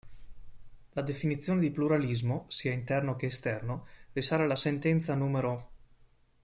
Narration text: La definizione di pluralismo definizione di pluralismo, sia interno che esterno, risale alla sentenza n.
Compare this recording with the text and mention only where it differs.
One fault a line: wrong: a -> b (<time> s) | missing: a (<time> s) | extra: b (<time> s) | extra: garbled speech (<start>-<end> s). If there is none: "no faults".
missing: definizione di pluralismo (2.5 s)